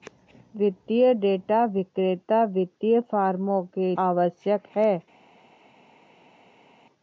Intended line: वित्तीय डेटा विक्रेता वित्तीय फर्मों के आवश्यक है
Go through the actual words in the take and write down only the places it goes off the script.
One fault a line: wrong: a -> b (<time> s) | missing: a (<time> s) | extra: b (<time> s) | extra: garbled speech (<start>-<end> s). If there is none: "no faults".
no faults